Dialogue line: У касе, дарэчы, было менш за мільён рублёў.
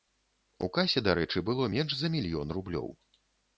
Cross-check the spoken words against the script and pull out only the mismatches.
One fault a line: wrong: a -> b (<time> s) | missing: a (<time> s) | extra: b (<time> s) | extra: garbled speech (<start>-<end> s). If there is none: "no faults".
no faults